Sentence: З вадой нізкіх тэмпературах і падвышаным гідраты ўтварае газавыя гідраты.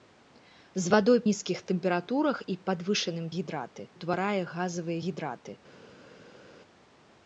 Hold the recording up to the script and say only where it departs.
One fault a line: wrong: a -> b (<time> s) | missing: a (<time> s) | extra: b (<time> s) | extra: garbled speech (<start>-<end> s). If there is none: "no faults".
no faults